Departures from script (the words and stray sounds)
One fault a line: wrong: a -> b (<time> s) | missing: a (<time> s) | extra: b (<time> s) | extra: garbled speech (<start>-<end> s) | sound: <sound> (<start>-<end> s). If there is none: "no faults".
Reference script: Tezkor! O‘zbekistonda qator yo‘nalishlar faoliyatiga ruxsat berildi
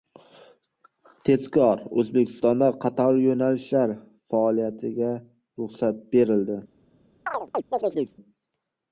sound: chirp (7.3-8.2 s)